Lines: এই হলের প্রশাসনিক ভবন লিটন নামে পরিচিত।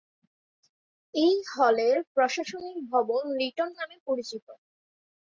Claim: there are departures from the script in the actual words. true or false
false